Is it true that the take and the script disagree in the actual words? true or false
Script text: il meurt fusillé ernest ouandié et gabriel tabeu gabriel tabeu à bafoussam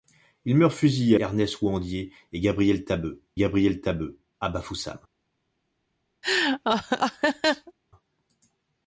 false